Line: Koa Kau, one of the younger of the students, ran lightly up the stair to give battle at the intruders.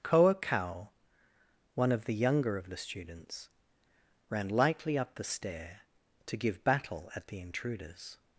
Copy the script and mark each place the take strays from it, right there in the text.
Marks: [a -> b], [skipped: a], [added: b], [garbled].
Koa Kau, one of the younger of the students, ran lightly up the stair to give battle at the intruders.